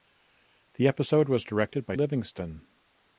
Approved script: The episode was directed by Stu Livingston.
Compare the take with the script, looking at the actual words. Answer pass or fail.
fail